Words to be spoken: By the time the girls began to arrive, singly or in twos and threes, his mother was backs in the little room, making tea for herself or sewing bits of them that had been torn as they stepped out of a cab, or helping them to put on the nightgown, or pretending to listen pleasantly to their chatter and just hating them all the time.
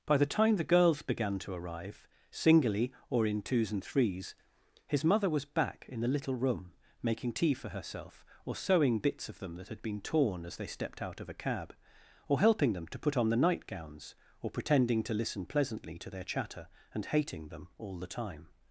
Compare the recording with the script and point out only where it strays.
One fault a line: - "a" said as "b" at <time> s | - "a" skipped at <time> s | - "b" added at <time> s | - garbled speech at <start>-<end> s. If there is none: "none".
- "backs" said as "back" at 5.5 s
- "nightgown" said as "nightgowns" at 13.4 s
- "just" skipped at 17.1 s